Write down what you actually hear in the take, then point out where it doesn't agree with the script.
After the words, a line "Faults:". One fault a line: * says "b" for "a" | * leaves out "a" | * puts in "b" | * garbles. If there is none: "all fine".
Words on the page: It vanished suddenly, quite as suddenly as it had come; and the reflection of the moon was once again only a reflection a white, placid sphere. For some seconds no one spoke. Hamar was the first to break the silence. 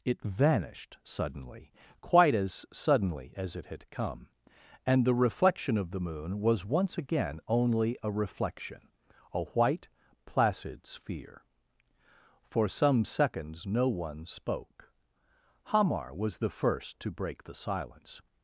It vanished suddenly, quite as suddenly as it had come; and the reflection of the moon was once again only a reflection a white, placid sphere. For some seconds no one spoke. Hamar was the first to break the silence.
Faults:
all fine